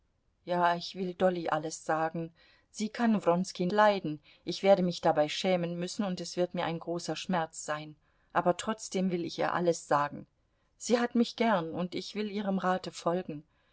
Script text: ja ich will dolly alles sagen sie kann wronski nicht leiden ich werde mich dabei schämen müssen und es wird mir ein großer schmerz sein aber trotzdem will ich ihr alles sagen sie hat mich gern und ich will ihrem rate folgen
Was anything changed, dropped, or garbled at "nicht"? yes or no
yes